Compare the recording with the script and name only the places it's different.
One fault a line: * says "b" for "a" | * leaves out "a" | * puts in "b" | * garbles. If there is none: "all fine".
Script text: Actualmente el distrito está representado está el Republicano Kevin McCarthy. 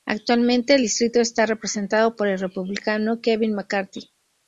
* says "por" for "está"